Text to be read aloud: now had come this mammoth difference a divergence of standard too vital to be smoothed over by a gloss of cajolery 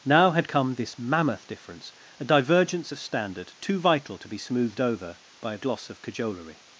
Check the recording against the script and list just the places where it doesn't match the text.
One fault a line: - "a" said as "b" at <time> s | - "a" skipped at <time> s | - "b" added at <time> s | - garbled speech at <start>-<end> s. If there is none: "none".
none